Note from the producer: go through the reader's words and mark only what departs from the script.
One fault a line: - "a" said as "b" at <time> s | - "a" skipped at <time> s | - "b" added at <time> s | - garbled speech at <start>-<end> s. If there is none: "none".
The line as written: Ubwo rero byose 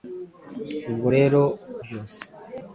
none